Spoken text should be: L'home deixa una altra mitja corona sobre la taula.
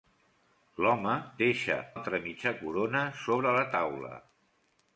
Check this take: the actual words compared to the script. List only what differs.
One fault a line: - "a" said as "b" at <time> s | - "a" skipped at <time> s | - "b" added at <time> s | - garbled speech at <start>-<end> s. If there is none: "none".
- "una" skipped at 1.8 s